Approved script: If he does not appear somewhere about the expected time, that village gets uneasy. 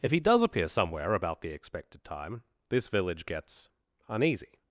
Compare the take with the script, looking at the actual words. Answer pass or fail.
fail